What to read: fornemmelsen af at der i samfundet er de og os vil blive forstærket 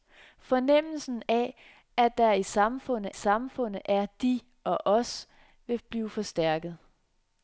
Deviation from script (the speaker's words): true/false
true